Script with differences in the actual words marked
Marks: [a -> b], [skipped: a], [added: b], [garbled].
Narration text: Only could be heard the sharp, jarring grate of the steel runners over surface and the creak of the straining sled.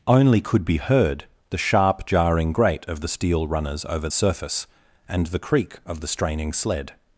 Only could be heard the sharp, jarring grate of the steel runners over surface and the creak of the straining sled.